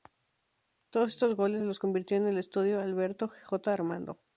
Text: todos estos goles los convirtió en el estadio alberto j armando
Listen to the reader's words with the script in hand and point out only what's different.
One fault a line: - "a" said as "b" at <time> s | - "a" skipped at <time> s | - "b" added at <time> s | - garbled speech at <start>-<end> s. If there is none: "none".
none